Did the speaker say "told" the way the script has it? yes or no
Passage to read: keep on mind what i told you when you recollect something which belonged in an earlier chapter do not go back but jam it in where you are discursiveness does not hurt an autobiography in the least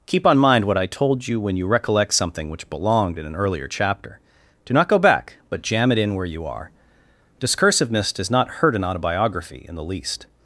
yes